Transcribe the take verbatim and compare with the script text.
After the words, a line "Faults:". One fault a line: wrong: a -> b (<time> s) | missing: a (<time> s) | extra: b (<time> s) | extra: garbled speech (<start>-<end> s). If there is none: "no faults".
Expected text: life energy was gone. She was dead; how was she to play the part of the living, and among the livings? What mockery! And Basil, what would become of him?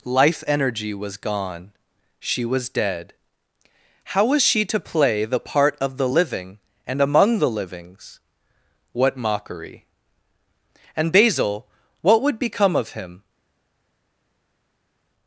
life energy was gone. She was dead; how was she to play the part of the living, and among the livings? What mockery! And Basil, what would become of him?
Faults:
no faults